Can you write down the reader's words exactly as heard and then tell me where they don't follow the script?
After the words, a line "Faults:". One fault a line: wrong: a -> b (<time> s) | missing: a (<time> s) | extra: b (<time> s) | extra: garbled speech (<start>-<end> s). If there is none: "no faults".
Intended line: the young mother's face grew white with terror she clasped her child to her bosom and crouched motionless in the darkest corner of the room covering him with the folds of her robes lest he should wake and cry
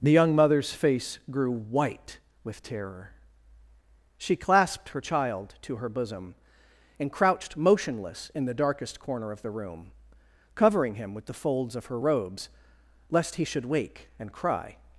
the young mother's face grew white with terror she clasped her child to her bosom and crouched motionless in the darkest corner of the room covering him with the folds of her robes lest he should wake and cry
Faults:
no faults